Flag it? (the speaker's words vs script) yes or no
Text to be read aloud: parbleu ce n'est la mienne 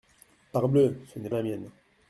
no